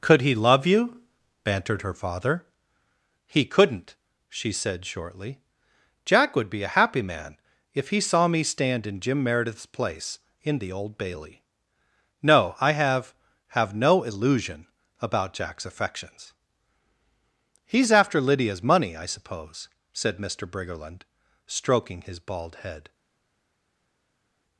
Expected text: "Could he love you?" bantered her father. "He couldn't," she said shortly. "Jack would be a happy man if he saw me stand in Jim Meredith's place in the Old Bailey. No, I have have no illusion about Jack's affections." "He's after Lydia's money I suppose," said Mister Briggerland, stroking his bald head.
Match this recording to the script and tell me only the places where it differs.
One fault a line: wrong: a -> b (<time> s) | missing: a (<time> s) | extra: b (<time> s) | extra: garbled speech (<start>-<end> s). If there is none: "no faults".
no faults